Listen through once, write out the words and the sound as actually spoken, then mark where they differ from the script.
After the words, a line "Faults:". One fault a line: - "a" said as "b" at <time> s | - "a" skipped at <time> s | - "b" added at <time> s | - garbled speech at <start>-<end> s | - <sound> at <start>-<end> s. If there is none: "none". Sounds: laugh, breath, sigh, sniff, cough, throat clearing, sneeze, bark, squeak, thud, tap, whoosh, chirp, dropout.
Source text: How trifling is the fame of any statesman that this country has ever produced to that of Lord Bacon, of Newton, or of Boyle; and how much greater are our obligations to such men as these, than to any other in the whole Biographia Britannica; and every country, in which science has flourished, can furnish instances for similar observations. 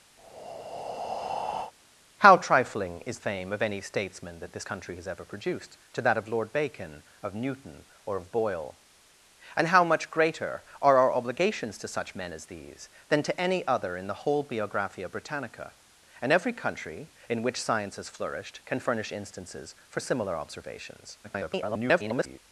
How trifling is fame of any statesman that this country has ever produced to that of Lord Bacon, of Newton, or of Boyle; and how much greater are our obligations to such men as these, than to any other in the whole Biographia Britannica; and every country, in which science has flourished, can furnish instances for similar observations. [garbled]
Faults:
- breath at 0.2-1.7 s
- "the" skipped at 3.2 s
- garbled speech at 21.2-22.4 s